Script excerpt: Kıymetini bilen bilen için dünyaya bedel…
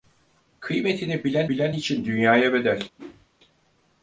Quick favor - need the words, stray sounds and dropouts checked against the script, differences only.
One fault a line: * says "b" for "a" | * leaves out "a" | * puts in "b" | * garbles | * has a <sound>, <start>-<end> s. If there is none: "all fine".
* has a whoosh, 3.0-3.3 s